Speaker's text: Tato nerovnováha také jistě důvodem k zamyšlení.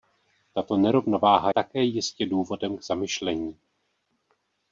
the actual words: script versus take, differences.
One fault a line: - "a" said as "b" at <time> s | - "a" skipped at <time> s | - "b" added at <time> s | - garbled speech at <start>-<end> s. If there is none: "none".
none